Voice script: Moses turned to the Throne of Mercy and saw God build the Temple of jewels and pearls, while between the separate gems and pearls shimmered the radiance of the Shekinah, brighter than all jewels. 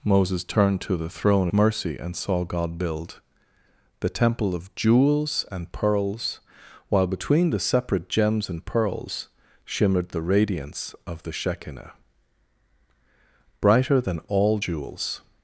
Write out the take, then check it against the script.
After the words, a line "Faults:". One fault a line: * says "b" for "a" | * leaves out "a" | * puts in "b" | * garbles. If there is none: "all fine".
Moses turned to the Throne Mercy and saw God build the Temple of jewels and pearls, while between the separate gems and pearls shimmered the radiance of the Shekinah, brighter than all jewels.
Faults:
* leaves out "of"